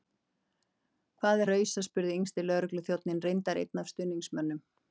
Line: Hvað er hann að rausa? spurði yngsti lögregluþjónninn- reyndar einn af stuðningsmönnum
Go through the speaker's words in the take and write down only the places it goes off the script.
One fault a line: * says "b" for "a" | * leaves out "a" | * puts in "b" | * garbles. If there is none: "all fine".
* leaves out "hann"